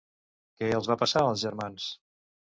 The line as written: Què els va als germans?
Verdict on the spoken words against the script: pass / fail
fail